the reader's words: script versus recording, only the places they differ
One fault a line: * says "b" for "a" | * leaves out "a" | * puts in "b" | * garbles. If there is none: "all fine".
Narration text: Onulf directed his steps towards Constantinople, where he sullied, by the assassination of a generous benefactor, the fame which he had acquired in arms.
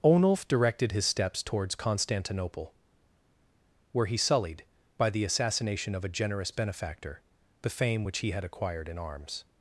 all fine